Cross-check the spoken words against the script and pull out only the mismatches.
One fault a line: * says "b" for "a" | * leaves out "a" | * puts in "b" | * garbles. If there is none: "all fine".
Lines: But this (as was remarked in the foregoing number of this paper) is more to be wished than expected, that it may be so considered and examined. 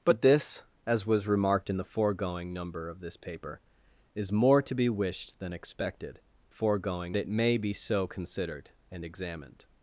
* says "foregoing" for "that"